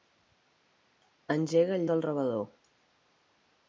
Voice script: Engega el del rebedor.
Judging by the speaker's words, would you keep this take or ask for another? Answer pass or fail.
pass